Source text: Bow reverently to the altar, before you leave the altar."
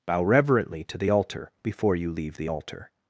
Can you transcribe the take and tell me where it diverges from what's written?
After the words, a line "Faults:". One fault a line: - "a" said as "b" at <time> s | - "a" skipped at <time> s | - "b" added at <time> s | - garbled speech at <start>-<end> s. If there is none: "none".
Bow reverently to the altar, before you leave the altar."
Faults:
none